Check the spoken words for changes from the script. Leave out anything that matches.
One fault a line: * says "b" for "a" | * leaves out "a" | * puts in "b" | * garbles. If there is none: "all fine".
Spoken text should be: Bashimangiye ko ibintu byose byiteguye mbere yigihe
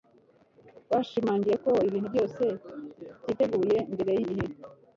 all fine